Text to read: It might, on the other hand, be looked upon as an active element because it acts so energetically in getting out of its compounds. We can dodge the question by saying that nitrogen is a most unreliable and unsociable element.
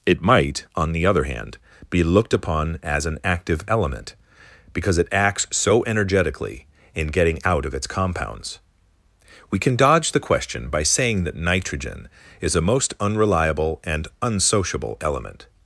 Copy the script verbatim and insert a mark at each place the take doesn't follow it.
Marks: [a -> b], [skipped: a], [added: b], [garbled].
It might, on the other hand, be looked upon as an active element because it acts so energetically in getting out of its compounds. We can dodge the question by saying that nitrogen is a most unreliable and unsociable element.